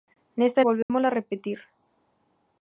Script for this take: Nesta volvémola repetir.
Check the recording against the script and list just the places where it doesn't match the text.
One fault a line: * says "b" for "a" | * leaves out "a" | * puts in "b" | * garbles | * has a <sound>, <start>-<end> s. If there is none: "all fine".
* has a dropout, 0.8-0.9 s